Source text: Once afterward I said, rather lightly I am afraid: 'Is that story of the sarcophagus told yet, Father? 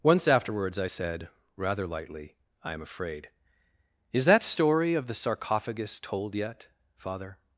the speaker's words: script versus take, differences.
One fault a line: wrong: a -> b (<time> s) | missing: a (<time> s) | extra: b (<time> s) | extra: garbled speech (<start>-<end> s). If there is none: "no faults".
wrong: afterward -> afterwards (0.3 s)